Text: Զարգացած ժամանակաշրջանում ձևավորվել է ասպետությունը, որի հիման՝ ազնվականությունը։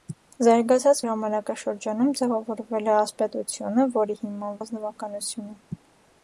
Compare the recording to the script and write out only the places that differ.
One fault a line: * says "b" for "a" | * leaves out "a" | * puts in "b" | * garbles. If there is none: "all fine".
all fine